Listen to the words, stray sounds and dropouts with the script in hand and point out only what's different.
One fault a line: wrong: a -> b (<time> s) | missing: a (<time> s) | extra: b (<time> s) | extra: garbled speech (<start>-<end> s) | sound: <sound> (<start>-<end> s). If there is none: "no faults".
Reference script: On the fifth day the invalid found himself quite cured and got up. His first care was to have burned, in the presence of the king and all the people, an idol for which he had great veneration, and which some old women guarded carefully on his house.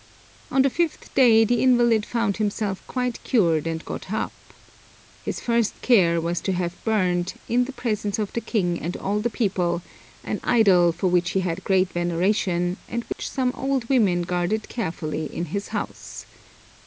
sound: dropout (13.1-13.2 s)
wrong: on -> in (15.2 s)